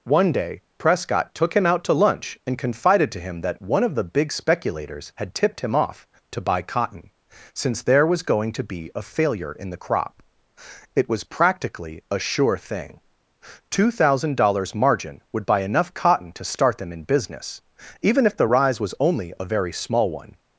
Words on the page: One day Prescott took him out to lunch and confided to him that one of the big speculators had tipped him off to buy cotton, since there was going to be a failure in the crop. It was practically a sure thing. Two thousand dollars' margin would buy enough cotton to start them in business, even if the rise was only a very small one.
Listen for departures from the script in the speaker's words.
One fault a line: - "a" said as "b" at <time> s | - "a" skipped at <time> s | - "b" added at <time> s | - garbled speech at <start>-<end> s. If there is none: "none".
none